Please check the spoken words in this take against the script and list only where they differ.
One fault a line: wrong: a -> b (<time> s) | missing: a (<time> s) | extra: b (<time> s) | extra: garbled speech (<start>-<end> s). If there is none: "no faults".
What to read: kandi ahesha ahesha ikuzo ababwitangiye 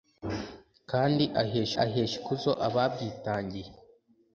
no faults